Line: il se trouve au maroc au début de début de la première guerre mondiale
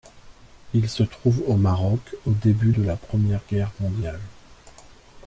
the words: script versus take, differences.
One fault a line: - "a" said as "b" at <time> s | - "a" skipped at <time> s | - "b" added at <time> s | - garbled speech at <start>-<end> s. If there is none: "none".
- "début de" skipped at 2.8 s